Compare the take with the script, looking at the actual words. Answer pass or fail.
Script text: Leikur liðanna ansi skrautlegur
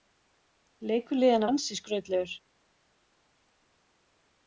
pass